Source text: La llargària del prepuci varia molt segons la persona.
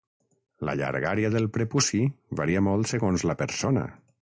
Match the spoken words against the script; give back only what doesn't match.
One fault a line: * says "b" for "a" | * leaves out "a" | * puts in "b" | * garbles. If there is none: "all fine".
all fine